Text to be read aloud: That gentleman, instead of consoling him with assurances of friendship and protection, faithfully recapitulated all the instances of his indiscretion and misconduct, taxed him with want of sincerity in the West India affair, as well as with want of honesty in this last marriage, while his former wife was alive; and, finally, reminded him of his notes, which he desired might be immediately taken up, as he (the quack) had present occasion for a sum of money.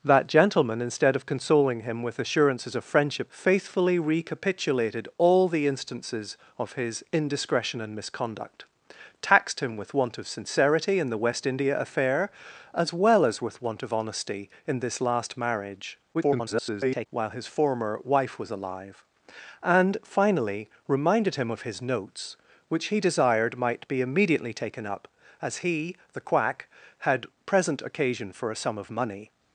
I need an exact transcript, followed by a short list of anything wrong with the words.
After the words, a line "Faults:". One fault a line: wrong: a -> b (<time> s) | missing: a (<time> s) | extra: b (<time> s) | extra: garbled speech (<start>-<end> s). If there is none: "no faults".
That gentleman, instead of consoling him with assurances of friendship faithfully recapitulated all the instances of his indiscretion and misconduct, taxed him with want of sincerity in the West India affair, as well as with want of honesty in this last marriage, [garbled] while his former wife was alive; and, finally, reminded him of his notes, which he desired might be immediately taken up, as he (the quack) had present occasion for a sum of money.
Faults:
missing: and protection (3.3 s)
extra: garbled speech (16.1-17.1 s)